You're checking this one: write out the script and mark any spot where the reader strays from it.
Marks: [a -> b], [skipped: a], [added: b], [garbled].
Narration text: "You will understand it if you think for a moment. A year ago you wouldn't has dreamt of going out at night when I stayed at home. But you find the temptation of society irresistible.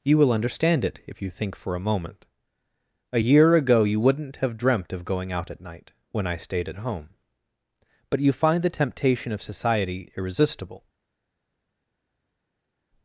"You will understand it if you think for a moment. A year ago you wouldn't [has -> have] dreamt of going out at night when I stayed at home. But you find the temptation of society irresistible.